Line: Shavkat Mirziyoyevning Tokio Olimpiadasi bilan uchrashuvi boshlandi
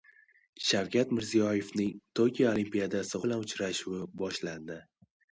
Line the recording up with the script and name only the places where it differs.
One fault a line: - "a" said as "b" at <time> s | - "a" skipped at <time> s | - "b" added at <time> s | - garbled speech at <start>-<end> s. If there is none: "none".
none